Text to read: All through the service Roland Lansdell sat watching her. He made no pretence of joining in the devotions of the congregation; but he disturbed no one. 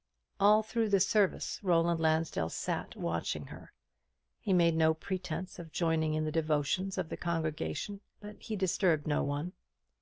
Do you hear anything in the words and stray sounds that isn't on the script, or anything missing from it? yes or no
no